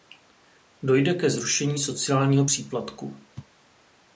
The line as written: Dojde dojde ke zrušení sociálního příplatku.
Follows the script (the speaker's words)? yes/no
no